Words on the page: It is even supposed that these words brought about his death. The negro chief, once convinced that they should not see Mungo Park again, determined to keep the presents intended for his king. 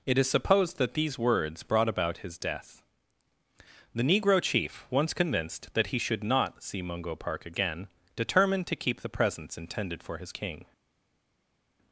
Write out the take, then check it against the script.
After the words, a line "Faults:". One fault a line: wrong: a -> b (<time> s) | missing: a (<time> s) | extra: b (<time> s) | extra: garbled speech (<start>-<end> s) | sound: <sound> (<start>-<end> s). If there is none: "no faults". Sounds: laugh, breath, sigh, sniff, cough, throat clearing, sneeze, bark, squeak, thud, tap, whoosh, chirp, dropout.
It is supposed that these words brought about his death. The negro chief, once convinced that he should not see Mungo Park again, determined to keep the presents intended for his king.
Faults:
missing: even (0.3 s)
wrong: they -> he (5.9 s)